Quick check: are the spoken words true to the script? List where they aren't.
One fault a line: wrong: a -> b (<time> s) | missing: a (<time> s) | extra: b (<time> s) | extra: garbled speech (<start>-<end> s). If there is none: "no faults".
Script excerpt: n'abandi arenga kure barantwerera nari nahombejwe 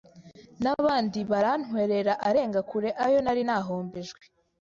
extra: barantwerera (1.3 s)
wrong: barantwerera -> ayo (3.1 s)